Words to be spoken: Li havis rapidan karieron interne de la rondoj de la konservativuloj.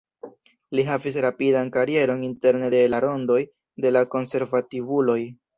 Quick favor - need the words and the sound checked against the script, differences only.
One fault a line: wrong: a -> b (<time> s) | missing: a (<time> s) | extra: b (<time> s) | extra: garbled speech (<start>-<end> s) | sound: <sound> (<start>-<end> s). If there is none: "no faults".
no faults